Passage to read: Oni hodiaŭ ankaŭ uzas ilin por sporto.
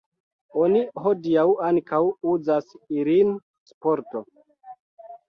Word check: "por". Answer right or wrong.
wrong